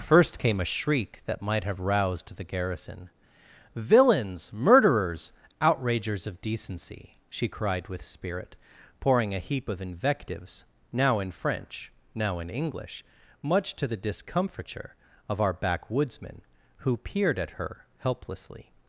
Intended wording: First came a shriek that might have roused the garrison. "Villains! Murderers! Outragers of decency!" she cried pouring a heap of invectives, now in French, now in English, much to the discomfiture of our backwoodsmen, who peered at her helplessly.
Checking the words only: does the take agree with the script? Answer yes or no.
no